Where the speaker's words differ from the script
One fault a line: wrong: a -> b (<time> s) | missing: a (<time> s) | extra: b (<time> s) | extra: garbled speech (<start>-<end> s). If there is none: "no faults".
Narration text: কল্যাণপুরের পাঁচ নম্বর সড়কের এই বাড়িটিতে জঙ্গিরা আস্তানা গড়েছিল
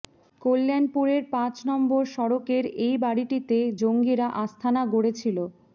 no faults